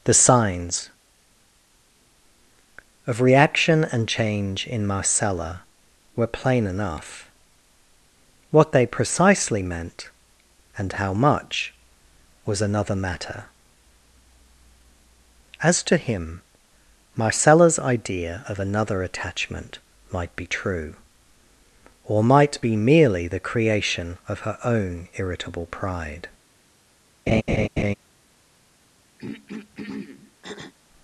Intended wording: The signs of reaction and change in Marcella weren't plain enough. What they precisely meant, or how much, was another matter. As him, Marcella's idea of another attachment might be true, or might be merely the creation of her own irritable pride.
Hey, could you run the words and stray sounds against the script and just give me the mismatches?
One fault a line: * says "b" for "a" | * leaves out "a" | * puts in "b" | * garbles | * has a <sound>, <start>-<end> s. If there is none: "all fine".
* says "were" for "weren't"
* says "and" for "or"
* puts in "to"
* has a laugh, 27.3-27.9 s
* has a throat clearing, 29.2-30.7 s